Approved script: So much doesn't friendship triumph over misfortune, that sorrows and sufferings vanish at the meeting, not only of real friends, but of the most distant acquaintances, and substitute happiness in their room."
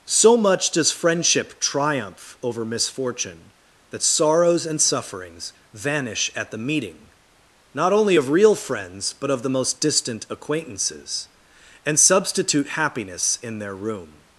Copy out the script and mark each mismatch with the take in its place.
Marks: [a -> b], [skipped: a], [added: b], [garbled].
So much [doesn't -> does] friendship triumph over misfortune, that sorrows and sufferings vanish at the meeting, not only of real friends, but of the most distant acquaintances, and substitute happiness in their room."